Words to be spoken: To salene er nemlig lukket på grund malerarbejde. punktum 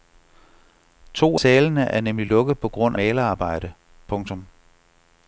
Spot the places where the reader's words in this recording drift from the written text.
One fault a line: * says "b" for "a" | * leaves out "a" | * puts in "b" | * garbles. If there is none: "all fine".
all fine